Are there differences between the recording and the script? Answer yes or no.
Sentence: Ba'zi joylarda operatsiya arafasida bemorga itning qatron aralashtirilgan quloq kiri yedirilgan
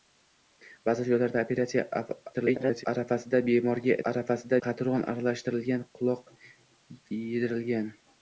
yes